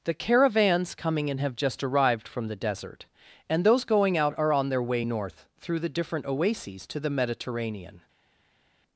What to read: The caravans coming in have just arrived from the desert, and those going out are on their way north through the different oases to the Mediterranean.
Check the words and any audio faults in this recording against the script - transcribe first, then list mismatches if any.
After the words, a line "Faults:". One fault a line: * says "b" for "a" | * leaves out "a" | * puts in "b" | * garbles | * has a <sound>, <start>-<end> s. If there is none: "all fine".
The caravans coming in have just arrived from the desert, and those going out are on their way north through the different oases to the Mediterranean.
Faults:
all fine